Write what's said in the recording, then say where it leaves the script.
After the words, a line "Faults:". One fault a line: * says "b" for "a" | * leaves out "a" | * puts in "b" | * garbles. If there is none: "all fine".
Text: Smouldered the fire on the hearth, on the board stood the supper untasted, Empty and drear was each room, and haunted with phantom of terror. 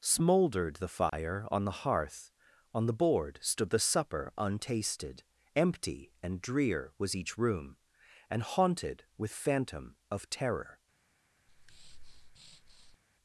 Smouldered the fire on the hearth, on the board stood the supper untasted, Empty and drear was each room, and haunted with phantom of terror.
Faults:
all fine